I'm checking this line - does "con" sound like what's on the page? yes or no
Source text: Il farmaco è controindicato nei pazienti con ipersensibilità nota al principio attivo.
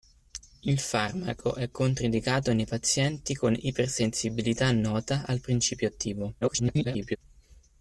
yes